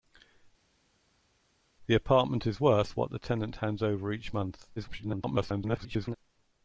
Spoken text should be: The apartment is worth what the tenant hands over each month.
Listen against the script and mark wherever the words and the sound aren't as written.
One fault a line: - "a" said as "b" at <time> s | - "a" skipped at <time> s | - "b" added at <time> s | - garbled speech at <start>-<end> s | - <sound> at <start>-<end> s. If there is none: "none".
- garbled speech at 4.8-6.2 s